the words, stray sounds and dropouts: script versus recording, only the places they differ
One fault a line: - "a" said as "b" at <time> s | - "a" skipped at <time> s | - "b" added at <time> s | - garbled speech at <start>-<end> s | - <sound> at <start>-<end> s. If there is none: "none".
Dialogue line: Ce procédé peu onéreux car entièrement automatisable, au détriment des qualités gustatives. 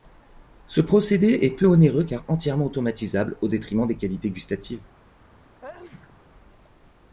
- "est" added at 1.4 s
- sneeze at 5.6-6.2 s